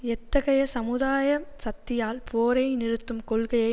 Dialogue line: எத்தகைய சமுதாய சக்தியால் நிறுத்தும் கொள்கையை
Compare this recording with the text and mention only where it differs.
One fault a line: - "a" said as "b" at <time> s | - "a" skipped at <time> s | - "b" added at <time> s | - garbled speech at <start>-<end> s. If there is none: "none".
- "போரை" added at 2.3 s